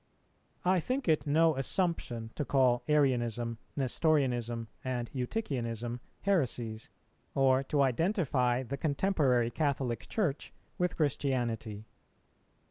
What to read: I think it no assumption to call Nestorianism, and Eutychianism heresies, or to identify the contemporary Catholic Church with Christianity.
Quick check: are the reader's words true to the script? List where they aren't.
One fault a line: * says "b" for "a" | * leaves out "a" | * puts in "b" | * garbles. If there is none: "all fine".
* puts in "Arianism"